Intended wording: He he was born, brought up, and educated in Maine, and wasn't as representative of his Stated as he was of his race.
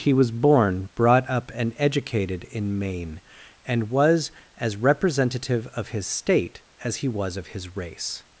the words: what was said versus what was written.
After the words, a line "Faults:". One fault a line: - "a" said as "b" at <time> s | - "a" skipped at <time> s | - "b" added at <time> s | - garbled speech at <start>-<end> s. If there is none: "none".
He was born, brought up, and educated in Maine, and was as representative of his State as he was of his race.
Faults:
- "he" skipped at 0.1 s
- "wasn't" said as "was" at 3.9 s
- "Stated" said as "State" at 6.1 s